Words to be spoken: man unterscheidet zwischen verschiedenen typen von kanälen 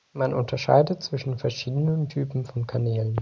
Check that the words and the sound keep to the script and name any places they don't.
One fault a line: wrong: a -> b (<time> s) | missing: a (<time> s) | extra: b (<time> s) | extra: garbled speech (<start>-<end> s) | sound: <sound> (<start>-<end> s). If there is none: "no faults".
no faults